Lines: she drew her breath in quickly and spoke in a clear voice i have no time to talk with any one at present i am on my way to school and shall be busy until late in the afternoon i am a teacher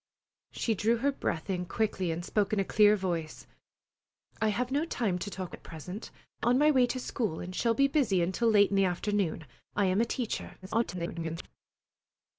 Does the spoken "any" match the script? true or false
false